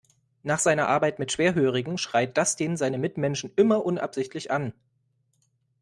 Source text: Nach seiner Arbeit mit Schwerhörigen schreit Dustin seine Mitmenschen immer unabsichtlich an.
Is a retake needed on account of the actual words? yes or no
no